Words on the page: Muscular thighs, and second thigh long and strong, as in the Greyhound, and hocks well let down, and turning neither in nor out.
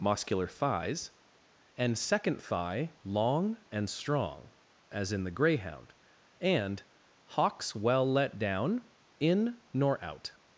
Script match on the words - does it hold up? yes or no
no